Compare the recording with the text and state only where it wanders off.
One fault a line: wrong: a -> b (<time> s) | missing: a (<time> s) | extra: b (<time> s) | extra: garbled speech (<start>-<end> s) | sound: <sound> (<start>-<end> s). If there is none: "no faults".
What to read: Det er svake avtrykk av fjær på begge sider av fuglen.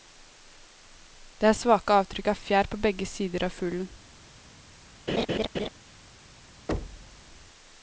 sound: laugh (5.1-5.7 s)
sound: thud (6.7-7.2 s)